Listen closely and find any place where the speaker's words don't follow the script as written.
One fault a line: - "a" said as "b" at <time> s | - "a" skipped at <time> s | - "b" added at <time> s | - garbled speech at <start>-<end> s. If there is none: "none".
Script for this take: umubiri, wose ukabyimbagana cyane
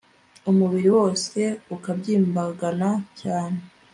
none